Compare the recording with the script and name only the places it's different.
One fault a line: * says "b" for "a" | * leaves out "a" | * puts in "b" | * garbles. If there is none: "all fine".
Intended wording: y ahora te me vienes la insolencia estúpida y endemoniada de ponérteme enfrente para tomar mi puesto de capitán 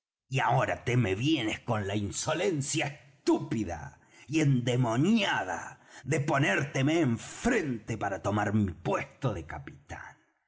* puts in "con"